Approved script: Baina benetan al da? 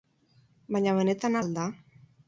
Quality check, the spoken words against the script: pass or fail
pass